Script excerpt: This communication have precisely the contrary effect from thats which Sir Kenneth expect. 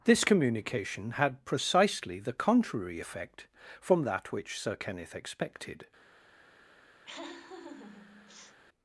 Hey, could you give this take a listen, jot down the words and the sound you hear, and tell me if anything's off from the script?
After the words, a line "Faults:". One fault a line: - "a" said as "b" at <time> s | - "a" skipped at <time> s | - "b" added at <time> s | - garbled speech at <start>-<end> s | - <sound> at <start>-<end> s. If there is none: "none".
This communication had precisely the contrary effect from that which Sir Kenneth expected.
Faults:
- "have" said as "had" at 1.1 s
- "thats" said as "that" at 4.0 s
- "expect" said as "expected" at 5.1 s
- laugh at 7.0-8.6 s